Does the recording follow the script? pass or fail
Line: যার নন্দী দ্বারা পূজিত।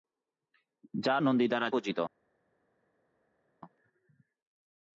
pass